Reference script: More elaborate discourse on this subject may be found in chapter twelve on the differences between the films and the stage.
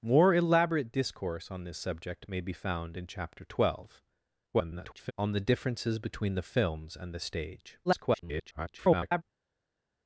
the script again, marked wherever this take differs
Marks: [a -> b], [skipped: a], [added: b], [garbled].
More elaborate discourse on this subject may be found in chapter twelve [garbled] on the differences between the films and the stage. [garbled]